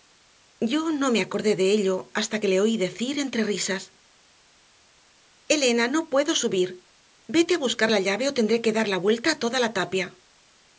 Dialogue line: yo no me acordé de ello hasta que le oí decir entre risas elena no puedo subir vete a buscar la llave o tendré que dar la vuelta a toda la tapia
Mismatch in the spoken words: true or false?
false